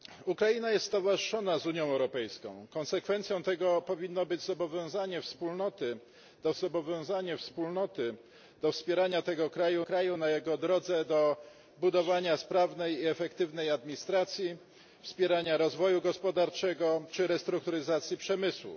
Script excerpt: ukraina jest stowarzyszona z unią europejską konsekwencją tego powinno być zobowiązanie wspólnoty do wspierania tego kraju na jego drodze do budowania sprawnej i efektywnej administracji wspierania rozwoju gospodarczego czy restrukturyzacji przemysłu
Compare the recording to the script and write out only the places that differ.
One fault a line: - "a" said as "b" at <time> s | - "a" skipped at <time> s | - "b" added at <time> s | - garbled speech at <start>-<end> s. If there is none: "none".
- "zobowiązanie wspólnoty do" added at 6.5 s
- "kraju" added at 9.8 s